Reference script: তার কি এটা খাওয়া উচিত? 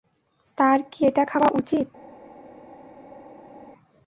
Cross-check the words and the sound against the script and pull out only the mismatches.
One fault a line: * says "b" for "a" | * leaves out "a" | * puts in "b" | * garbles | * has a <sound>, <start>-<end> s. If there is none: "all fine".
all fine